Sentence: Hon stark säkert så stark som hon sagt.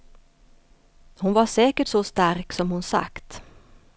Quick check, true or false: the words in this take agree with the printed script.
false